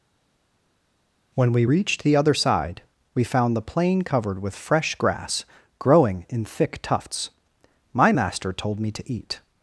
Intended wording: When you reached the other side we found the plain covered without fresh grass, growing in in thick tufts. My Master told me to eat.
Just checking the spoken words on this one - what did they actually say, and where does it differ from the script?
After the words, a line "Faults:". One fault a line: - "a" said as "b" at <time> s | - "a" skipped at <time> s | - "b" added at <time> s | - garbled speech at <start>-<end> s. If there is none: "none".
When we reached the other side we found the plain covered with fresh grass, growing in thick tufts. My Master told me to eat.
Faults:
- "you" said as "we" at 1.5 s
- "without" said as "with" at 4.4 s
- "in" skipped at 6.4 s